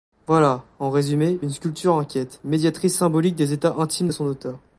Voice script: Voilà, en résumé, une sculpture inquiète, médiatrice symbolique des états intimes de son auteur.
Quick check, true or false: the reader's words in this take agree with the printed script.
true